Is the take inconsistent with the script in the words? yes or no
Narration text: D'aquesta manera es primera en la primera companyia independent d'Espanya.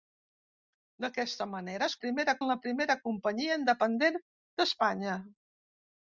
no